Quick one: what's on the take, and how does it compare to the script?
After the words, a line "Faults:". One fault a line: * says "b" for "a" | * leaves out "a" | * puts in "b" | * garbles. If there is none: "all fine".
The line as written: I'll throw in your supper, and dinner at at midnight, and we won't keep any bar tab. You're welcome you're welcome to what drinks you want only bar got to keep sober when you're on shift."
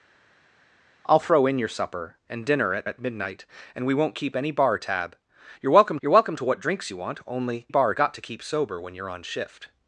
I'll throw in your supper, and dinner at at midnight, and we won't keep any bar tab. You're welcome you're welcome to what drinks you want only bar got to keep sober when you're on shift."
Faults:
all fine